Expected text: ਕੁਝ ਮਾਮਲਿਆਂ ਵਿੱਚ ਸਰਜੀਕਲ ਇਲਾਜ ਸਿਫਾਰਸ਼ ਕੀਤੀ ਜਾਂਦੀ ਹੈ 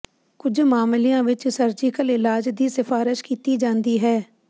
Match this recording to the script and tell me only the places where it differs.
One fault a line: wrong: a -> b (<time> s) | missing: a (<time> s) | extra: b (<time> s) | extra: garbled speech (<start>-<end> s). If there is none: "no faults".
extra: ਦੀ (2.5 s)